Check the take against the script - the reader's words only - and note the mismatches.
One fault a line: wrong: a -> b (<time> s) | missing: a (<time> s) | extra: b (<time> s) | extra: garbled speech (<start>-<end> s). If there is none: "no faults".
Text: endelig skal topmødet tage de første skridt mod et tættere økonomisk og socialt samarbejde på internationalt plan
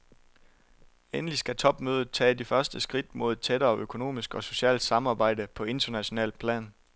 no faults